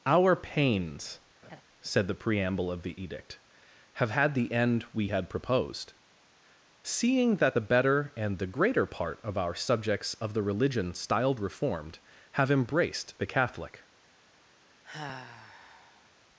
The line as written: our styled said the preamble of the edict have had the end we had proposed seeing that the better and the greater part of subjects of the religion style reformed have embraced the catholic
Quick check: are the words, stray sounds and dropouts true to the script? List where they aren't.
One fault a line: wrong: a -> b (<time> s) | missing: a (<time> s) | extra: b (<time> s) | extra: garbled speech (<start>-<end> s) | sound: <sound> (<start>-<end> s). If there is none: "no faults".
wrong: styled -> pains (0.3 s)
sound: laugh (1.4-1.6 s)
extra: our (9.4 s)
wrong: style -> styled (10.9 s)
sound: sigh (14.8-16.1 s)